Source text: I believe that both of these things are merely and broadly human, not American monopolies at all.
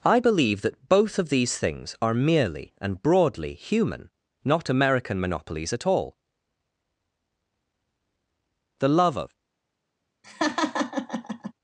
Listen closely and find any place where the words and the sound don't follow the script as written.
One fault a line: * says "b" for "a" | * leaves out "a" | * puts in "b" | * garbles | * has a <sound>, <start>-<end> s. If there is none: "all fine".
* puts in "The love of"
* has a laugh, 10.2-11.5 s